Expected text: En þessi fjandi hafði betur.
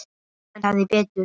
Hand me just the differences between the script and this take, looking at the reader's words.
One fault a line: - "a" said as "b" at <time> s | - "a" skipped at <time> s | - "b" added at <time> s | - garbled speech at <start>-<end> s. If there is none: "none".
- "þessi fjandi" skipped at 0.7 s